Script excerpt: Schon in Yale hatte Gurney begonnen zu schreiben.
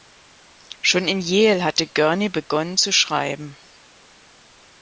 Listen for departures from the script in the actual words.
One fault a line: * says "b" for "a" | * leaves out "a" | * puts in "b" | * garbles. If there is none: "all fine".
all fine